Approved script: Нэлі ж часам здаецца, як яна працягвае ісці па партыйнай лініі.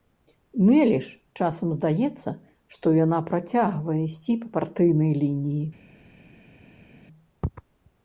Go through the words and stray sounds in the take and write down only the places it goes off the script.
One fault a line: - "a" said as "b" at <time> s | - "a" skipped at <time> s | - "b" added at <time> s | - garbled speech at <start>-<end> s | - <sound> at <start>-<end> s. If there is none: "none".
- "як" said as "што" at 2.8 s